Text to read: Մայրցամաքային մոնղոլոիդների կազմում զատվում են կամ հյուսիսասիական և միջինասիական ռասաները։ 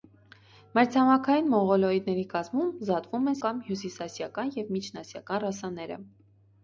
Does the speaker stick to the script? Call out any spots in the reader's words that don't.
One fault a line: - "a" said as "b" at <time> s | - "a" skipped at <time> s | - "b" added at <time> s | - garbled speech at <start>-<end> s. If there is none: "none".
none